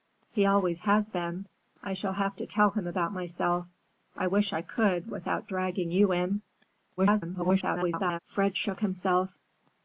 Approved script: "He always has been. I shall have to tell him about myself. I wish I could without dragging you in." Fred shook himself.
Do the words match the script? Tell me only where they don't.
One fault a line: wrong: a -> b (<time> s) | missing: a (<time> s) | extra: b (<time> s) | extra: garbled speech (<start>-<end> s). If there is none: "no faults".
extra: garbled speech (7.0-8.2 s)